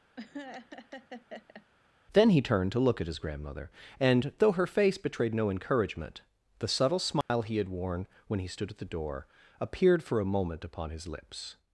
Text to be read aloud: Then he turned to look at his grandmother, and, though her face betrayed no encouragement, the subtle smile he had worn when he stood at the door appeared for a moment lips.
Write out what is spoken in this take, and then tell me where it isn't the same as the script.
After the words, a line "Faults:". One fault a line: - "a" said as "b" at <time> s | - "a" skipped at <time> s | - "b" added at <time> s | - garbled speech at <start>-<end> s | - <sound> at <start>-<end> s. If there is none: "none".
Then he turned to look at his grandmother, and, though her face betrayed no encouragement, the subtle smile he had worn when he stood at the door appeared for a moment upon his lips.
Faults:
- laugh at 0.2-1.7 s
- dropout at 7.2-7.3 s
- "upon his" added at 10.6 s